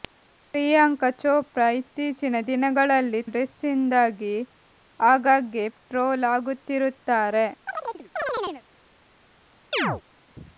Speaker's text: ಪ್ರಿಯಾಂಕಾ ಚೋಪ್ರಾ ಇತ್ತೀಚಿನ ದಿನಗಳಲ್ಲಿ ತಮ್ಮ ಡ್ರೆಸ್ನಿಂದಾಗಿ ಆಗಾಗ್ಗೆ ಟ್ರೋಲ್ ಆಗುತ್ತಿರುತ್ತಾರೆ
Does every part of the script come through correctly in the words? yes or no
no